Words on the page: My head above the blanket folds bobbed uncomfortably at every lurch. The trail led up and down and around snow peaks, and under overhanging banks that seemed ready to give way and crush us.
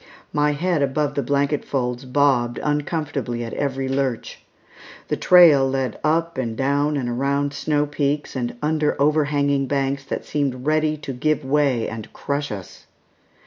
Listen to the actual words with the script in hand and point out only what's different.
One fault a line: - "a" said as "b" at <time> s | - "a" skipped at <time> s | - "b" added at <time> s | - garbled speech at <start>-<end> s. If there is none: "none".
none